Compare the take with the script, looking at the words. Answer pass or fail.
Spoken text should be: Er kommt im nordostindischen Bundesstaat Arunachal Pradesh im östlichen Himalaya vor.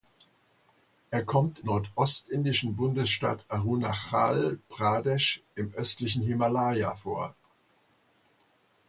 fail